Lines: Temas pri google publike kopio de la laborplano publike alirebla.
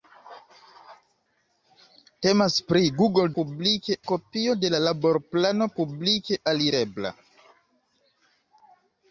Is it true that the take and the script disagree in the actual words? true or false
false